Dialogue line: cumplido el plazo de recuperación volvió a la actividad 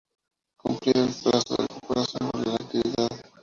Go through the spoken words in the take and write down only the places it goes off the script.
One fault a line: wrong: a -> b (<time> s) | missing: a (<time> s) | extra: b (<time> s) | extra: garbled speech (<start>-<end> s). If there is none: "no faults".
no faults